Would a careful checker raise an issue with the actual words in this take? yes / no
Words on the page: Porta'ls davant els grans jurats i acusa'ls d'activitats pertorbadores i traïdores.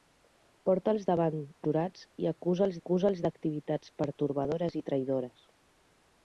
yes